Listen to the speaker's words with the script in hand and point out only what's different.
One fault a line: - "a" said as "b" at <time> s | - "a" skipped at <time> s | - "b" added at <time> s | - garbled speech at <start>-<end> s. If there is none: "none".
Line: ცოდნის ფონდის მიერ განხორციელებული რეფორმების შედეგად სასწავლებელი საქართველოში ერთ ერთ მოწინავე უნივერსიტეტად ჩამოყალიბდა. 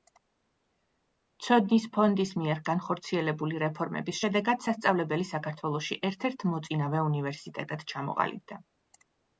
none